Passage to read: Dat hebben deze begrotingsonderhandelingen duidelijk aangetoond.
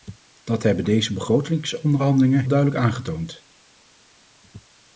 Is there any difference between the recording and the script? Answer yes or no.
no